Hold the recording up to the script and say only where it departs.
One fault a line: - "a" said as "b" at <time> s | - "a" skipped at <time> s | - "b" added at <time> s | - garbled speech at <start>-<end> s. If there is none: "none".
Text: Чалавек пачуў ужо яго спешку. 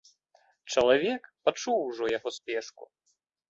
none